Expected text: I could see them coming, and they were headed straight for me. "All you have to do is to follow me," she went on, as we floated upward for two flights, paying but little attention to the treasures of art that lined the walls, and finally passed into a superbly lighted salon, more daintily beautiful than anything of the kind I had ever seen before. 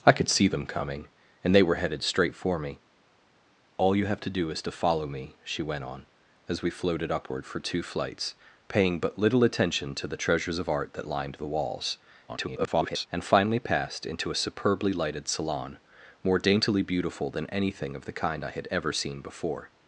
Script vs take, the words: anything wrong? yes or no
yes